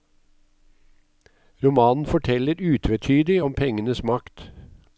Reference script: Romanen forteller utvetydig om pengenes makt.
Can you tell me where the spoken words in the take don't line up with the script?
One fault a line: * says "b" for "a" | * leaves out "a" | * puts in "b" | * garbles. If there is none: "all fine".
all fine